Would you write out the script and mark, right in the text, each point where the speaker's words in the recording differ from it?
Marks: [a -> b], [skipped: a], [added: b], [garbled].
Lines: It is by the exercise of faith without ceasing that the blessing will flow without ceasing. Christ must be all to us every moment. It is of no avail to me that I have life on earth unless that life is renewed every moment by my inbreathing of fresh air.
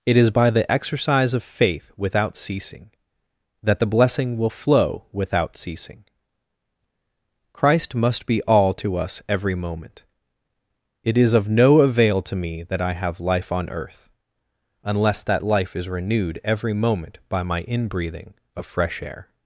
It is by the exercise of faith without ceasing that the blessing will flow without ceasing. Christ must be all to us every moment. It is of no avail to me that I have life on earth unless that life is renewed every moment by my inbreathing of fresh air.